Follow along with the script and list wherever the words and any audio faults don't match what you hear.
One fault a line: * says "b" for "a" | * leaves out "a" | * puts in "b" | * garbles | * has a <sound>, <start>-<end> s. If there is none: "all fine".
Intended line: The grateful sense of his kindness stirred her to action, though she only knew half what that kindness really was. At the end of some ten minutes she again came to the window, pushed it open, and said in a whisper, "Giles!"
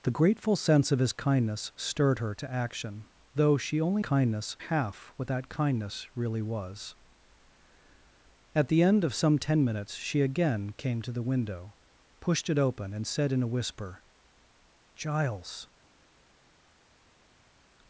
* says "kindness" for "knew"